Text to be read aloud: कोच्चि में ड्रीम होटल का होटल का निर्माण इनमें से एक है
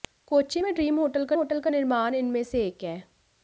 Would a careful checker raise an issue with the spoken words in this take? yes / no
no